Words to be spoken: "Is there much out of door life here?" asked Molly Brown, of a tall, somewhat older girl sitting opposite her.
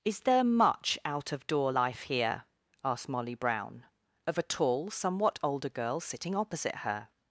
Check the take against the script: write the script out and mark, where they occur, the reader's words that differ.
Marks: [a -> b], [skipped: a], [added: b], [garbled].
"Is there much out of door life here?" asked Molly Brown, of a tall, somewhat older girl sitting opposite her.